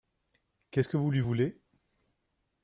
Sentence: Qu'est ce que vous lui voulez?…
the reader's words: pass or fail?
pass